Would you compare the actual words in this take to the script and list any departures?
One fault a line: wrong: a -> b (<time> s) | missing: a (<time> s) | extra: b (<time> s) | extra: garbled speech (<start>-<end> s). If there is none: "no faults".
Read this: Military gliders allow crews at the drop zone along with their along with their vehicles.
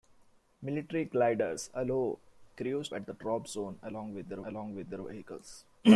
no faults